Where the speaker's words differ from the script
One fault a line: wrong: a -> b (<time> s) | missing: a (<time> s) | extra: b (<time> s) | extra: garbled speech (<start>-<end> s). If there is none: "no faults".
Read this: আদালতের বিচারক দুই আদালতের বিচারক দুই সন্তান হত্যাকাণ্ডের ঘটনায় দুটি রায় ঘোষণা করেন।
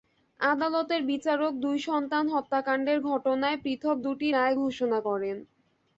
missing: আদালতের বিচারক দুই (1.8 s)
extra: পৃথক (3.6 s)